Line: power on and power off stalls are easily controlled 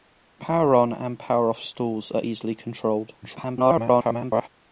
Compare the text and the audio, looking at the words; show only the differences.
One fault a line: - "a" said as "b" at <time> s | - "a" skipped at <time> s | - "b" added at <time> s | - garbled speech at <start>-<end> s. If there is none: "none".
- garbled speech at 3.2-4.5 s